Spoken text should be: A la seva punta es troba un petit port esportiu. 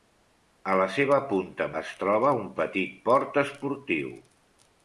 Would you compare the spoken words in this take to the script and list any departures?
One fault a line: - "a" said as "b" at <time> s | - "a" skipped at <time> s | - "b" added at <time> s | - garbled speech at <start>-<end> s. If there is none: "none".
none